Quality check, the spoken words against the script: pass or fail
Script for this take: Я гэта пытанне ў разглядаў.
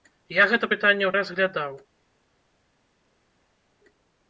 pass